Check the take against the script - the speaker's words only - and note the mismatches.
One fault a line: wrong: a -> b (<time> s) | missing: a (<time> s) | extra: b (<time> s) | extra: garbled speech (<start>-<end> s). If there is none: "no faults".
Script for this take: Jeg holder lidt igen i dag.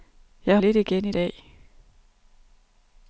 missing: holder (0.6 s)